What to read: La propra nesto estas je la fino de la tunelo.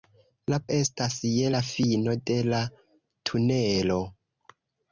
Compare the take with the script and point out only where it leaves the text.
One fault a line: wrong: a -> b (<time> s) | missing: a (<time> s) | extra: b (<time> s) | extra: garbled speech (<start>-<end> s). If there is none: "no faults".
missing: propra nesto (0.6 s)